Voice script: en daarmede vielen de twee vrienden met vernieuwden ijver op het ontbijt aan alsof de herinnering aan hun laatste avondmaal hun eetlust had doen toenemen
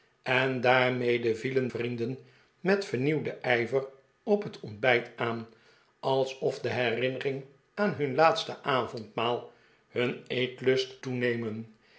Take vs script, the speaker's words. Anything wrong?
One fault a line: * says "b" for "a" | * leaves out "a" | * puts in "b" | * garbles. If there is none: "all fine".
* leaves out "de twee"
* leaves out "had doen"